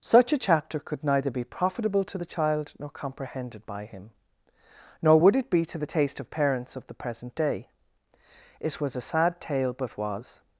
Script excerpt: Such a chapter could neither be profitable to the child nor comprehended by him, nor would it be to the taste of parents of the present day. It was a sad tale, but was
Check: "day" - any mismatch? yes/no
no